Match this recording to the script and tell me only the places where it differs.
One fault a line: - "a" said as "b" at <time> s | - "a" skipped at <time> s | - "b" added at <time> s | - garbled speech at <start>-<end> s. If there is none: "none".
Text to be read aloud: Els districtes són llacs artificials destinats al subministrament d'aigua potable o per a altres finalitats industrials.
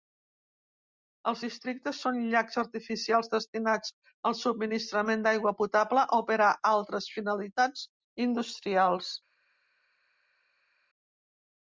none